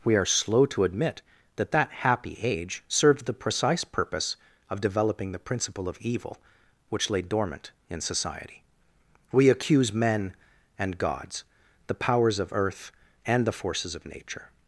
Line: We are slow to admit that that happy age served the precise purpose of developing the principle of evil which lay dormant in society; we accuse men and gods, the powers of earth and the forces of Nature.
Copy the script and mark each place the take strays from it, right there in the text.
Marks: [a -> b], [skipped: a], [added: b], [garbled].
We are slow to admit that that happy age served the precise purpose of developing the principle of evil which lay dormant in society; we accuse men and gods, the powers of earth and the forces of Nature.